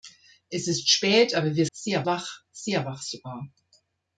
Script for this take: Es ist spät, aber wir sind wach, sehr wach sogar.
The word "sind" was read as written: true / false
false